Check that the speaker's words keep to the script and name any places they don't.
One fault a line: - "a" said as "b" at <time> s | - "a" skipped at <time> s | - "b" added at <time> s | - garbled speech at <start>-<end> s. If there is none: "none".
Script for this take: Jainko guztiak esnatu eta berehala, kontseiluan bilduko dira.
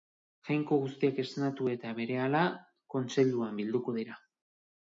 none